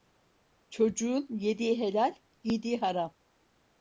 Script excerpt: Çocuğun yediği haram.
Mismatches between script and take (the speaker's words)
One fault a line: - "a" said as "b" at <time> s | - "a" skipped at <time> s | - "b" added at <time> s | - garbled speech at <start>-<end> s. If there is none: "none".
- "helal giydiği" added at 1.8 s